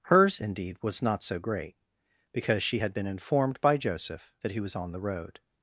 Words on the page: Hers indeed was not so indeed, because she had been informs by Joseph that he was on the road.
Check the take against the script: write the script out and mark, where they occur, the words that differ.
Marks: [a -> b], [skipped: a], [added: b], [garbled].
Hers indeed was not so [indeed, -> great] because she had been [informs -> informed] by Joseph that he was on the road.